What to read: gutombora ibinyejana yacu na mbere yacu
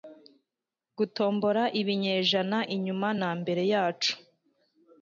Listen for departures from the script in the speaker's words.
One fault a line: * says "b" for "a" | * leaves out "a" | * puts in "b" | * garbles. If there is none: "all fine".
* says "inyuma" for "yacu"